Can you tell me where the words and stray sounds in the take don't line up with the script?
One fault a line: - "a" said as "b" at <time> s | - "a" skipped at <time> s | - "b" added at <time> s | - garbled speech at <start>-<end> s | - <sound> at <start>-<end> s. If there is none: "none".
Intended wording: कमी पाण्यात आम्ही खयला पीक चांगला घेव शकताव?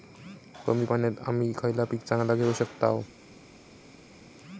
none